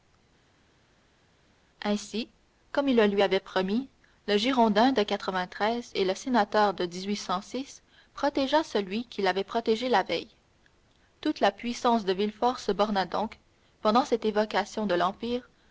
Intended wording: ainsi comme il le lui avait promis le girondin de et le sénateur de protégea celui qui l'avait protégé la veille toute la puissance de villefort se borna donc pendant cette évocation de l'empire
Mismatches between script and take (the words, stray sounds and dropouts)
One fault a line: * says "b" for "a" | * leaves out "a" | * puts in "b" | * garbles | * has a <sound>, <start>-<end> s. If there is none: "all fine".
all fine